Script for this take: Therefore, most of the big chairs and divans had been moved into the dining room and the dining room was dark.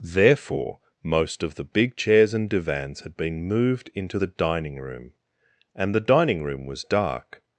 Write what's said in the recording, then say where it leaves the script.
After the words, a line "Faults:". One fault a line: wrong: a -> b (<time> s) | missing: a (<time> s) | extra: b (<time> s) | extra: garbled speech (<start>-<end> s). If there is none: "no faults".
Therefore, most of the big chairs and divans had been moved into the dining room and the dining room was dark.
Faults:
no faults